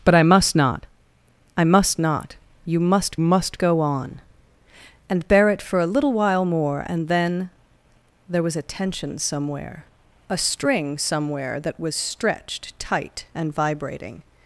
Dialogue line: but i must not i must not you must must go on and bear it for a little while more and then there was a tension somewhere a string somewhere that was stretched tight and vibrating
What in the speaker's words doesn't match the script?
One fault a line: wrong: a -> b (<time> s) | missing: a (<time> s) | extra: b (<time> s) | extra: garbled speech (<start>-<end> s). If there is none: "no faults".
no faults